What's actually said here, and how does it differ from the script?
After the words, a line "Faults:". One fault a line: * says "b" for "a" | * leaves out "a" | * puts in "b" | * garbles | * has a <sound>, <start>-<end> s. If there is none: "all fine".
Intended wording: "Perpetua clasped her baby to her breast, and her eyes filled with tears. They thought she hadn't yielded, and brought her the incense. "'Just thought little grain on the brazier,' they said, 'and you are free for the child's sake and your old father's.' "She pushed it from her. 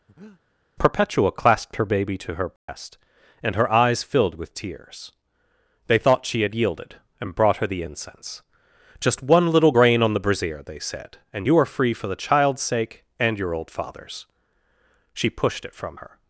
"Perpetua clasped her baby to her breast, and her eyes filled with tears. They thought she had yielded, and brought her the incense. "'Just one little grain on the brazier,' they said, 'and you are free for the child's sake and your old father's.' "She pushed it from her.
Faults:
* has a breath, 0.1-0.4 s
* has a dropout, 2.6-2.7 s
* says "had" for "hadn't"
* says "one" for "thought"